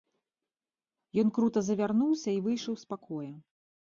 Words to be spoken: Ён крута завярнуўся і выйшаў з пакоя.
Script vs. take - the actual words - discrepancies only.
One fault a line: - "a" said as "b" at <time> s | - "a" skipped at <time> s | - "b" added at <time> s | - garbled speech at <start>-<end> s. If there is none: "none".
none